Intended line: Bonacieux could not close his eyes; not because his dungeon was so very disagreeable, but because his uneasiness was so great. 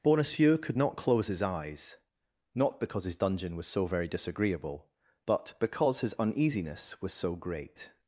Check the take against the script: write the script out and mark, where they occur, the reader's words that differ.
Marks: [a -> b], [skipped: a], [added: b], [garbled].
Bonacieux could not close his eyes; not because his dungeon was so very disagreeable, but because his uneasiness was so great.